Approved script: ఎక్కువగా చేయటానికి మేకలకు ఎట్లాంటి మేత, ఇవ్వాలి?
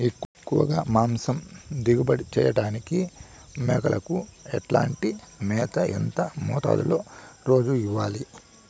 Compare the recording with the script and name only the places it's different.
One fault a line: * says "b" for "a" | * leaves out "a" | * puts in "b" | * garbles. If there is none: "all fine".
* puts in "మాంసం దిగుబడి"
* puts in "ఎంత మోతాదులో రోజు"